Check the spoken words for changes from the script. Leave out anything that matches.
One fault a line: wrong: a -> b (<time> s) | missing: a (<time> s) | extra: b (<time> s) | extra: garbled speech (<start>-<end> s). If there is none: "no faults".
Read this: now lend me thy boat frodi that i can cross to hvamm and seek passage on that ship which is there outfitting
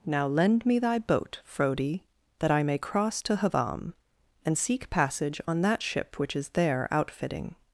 wrong: can -> may (2.6 s)